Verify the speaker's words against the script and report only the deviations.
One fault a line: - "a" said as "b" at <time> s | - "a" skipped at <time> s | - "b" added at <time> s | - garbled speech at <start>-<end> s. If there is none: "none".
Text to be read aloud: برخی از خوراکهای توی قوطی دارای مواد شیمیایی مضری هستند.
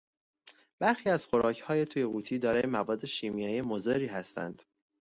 none